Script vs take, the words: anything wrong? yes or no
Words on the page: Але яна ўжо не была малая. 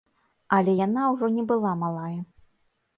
no